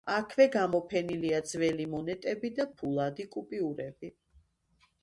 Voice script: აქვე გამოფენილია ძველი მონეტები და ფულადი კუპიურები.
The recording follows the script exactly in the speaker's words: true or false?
true